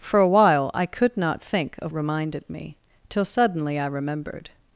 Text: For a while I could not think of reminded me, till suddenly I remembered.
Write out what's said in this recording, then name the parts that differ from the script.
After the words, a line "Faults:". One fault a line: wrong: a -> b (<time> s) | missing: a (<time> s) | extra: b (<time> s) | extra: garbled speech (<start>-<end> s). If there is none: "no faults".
For a while I could not think of reminded me, till suddenly I remembered.
Faults:
no faults